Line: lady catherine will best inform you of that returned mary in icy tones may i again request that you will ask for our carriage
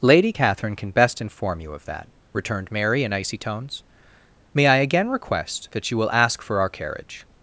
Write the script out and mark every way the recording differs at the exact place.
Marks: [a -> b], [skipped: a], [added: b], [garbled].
lady catherine [will -> can] best inform you of that returned mary in icy tones may i again request that you will ask for our carriage